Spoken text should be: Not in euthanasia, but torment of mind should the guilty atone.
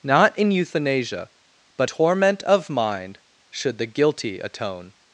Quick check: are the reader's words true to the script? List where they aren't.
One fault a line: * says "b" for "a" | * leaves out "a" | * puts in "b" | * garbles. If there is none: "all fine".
all fine